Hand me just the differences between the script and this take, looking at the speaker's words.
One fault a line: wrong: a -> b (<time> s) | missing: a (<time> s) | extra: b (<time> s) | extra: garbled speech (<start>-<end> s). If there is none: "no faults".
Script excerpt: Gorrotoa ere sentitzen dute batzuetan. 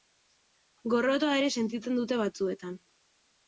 no faults